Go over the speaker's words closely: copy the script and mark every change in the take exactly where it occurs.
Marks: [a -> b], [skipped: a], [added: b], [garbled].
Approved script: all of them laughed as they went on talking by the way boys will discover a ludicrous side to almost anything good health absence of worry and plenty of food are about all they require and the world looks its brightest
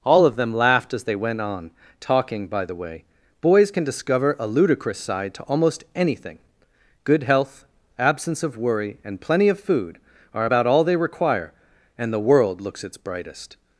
all of them laughed as they went on talking by the way boys [will -> can] discover a ludicrous side to almost anything good health absence of worry and plenty of food are about all they require and the world looks its brightest